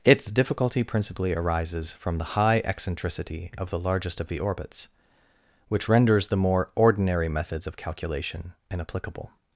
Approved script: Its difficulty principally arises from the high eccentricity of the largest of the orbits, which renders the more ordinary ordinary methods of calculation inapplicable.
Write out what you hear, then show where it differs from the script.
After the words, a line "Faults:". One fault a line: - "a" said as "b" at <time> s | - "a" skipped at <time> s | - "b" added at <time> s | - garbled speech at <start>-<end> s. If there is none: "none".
Its difficulty principally arises from the high eccentricity of the largest of the orbits, which renders the more ordinary methods of calculation inapplicable.
Faults:
- "ordinary" skipped at 7.3 s